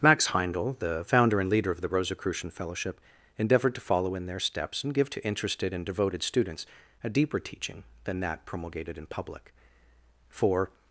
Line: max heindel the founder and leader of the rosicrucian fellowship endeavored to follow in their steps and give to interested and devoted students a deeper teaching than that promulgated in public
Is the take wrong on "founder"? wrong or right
right